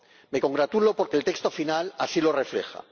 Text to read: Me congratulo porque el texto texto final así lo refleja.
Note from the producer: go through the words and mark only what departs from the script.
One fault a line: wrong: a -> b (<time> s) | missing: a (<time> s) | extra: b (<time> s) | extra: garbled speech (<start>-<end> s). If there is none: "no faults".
missing: texto (1.5 s)